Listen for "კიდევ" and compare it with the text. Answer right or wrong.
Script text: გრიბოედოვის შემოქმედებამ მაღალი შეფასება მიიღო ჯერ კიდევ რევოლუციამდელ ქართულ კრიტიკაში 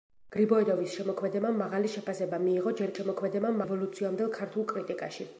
wrong